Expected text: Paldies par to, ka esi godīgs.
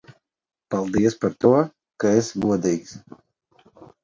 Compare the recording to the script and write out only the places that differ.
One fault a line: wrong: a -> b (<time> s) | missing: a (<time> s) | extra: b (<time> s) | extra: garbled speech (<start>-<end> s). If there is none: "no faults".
no faults